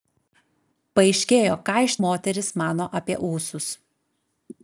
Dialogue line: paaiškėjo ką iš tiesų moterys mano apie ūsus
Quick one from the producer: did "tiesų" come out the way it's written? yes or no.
no